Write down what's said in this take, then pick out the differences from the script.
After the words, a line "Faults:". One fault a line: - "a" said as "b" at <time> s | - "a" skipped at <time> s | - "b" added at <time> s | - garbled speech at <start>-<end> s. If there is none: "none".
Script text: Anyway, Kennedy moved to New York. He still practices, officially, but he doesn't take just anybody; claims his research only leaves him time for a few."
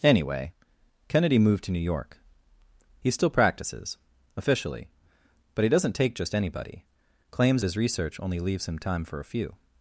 Anyway, Kennedy moved to New York. He still practices, officially, but he doesn't take just anybody; claims his research only leaves him time for a few."
Faults:
none